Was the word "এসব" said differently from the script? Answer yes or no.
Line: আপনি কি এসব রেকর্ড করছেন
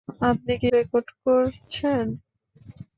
yes